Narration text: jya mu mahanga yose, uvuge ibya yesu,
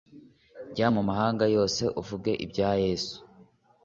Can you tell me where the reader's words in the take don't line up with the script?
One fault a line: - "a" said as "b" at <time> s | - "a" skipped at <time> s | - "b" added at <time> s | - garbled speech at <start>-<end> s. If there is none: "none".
none